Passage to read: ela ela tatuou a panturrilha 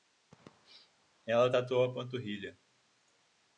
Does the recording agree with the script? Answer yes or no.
no